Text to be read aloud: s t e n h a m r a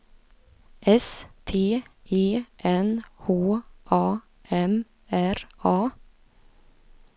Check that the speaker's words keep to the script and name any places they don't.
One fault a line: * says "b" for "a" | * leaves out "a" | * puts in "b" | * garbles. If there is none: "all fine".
all fine